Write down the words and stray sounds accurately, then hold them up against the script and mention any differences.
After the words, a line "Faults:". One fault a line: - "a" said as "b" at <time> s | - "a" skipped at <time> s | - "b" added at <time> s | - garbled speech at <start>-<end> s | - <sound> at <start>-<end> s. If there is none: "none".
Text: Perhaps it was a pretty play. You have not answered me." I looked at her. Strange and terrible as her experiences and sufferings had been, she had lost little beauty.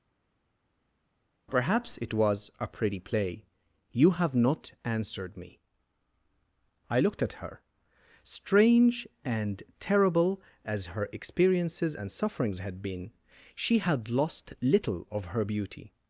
Perhaps it was a pretty play. You have not answered me." I looked at her. Strange and terrible as her experiences and sufferings had been, she had lost little of her beauty.
Faults:
- "of her" added at 15.1 s